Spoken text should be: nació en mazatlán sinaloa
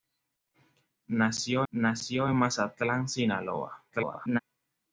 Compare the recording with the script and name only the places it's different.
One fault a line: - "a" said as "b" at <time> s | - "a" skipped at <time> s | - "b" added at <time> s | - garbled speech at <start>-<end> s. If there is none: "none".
- "nació" added at 1.7 s
- garbled speech at 3.9-4.4 s